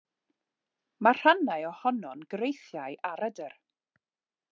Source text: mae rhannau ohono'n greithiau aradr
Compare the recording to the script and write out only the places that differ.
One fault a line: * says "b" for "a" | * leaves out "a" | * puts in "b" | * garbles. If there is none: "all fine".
all fine